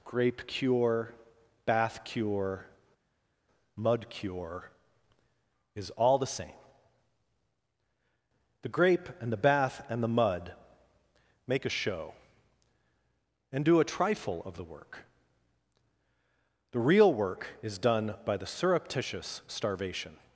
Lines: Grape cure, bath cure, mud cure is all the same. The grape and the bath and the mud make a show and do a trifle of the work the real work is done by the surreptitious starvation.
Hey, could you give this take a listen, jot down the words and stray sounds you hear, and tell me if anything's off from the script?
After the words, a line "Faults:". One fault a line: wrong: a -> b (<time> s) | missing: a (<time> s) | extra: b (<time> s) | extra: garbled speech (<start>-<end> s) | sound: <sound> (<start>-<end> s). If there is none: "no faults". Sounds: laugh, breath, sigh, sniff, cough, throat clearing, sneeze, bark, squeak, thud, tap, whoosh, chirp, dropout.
Grape cure, bath cure, mud cure is all the same. The grape and the bath and the mud make a show and do a trifle of the work the real work is done by the surreptitious starvation.
Faults:
no faults